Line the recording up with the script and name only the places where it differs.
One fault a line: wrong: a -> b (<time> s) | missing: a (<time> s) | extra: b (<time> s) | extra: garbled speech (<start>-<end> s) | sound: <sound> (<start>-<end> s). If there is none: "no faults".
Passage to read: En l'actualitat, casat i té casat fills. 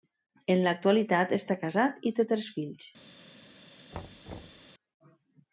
extra: està (1.4 s)
wrong: casat -> tres (2.3 s)
sound: thud (3.9-4.7 s)